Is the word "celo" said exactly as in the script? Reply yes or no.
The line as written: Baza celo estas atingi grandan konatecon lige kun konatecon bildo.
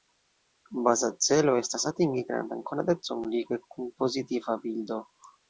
yes